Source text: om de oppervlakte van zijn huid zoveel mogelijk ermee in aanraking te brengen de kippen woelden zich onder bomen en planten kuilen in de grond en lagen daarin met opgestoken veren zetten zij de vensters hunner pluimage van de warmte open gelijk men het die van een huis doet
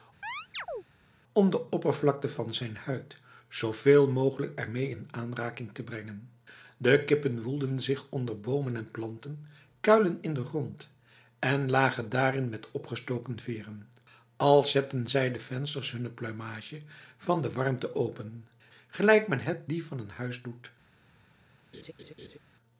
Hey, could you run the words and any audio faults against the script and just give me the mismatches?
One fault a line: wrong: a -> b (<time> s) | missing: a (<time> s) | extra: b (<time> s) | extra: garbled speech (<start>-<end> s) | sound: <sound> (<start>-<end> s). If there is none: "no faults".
sound: chirp (0.2-0.8 s)
extra: als (14.4 s)
sound: laugh (21.7-22.4 s)